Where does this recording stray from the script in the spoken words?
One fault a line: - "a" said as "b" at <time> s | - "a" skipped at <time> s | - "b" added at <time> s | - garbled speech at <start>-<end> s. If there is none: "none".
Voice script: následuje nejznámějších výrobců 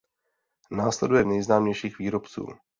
none